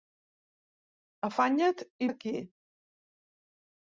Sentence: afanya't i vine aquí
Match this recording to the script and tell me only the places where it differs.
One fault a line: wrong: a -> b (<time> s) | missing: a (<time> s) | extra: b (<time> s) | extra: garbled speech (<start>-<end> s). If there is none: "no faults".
missing: vine (2.1 s)